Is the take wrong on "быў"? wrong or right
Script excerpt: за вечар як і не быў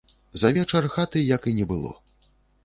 wrong